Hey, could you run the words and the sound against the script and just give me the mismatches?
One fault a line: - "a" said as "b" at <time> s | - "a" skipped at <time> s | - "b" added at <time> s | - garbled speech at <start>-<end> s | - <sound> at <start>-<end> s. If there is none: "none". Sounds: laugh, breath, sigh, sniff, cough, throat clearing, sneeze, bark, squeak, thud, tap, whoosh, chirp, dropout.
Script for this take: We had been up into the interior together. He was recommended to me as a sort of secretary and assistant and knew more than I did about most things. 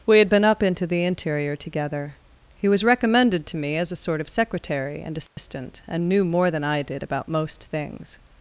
- dropout at 5.3-5.4 s